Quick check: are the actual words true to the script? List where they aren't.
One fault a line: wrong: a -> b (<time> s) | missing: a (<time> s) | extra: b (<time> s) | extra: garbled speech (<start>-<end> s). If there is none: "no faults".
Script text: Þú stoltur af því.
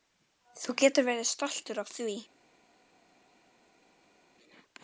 extra: getur verið (0.8 s)